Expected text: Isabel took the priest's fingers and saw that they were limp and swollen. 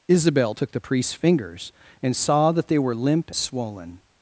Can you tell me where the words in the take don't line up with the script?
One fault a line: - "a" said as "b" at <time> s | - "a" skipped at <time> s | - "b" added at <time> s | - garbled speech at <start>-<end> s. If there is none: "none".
- "and" skipped at 3.3 s